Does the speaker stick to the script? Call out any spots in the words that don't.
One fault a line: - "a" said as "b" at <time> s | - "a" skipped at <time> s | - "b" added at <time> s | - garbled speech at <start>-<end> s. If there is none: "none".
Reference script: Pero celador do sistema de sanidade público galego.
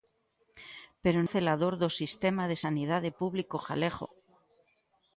none